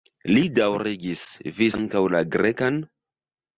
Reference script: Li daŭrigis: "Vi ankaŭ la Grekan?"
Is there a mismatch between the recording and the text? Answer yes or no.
no